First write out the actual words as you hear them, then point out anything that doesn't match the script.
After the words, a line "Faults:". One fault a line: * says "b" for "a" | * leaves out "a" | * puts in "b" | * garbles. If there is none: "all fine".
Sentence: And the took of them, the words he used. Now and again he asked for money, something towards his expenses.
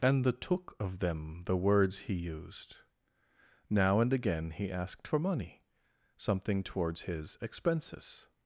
And the took of them, the words he used. Now and again he asked for money, something towards his expenses.
Faults:
all fine